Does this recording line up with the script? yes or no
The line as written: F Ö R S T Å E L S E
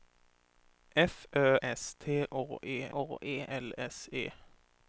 no